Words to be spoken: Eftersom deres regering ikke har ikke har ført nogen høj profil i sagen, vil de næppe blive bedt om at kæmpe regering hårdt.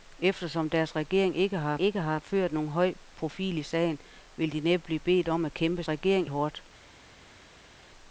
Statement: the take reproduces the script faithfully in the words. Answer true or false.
true